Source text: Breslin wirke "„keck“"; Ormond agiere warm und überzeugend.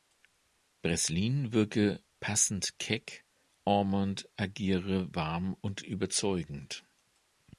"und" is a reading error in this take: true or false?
false